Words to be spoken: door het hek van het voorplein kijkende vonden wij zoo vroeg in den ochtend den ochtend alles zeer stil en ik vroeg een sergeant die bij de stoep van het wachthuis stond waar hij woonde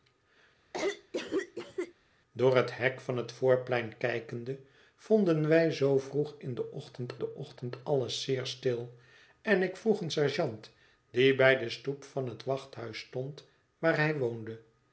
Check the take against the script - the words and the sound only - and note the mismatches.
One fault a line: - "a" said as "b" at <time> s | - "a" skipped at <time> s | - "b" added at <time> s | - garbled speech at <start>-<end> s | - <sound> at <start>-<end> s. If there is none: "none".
- cough at 0.7-1.9 s